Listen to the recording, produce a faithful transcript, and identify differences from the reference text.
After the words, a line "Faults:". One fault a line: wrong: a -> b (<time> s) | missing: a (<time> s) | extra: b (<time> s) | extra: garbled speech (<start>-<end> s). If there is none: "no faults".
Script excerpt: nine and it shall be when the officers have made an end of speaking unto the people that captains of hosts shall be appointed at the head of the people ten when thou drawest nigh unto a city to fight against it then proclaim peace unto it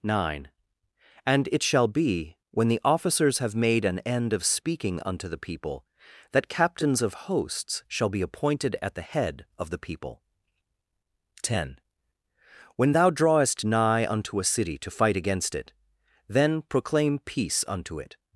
nine and it shall be when the officers have made an end of speaking unto the people that captains of hosts shall be appointed at the head of the people ten when thou drawest nigh unto a city to fight against it then proclaim peace unto it
Faults:
no faults